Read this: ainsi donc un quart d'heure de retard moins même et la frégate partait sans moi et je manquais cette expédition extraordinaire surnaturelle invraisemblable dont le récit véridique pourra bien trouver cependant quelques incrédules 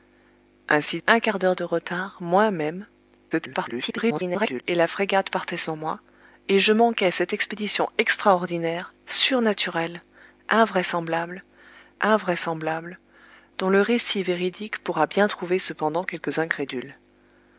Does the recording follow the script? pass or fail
fail